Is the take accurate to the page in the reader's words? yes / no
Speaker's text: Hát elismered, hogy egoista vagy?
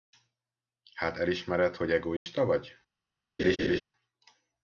yes